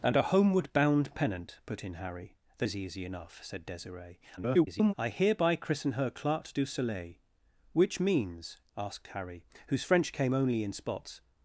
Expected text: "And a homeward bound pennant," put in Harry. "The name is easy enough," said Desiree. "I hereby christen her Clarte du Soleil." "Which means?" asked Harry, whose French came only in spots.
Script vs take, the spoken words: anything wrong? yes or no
yes